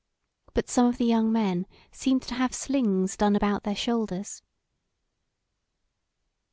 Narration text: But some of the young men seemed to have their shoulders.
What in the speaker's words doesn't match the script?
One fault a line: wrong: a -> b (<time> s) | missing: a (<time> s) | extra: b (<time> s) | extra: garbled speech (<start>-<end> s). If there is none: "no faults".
extra: slings done about (2.5 s)